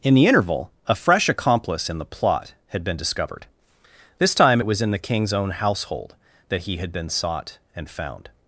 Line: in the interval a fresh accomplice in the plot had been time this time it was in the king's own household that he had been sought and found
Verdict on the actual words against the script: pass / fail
fail